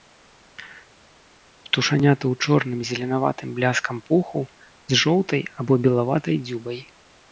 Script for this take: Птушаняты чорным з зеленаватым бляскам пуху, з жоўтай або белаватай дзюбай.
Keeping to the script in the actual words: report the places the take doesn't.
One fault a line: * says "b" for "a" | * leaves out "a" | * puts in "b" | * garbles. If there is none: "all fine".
* puts in "ў"